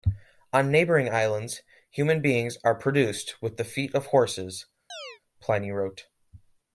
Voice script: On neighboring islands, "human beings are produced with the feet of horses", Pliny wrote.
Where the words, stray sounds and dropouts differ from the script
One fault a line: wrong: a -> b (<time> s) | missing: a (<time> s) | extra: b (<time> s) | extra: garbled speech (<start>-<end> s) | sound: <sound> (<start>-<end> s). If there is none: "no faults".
sound: chirp (4.9-5.2 s)